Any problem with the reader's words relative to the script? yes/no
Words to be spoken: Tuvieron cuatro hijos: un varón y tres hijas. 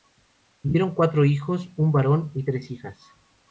no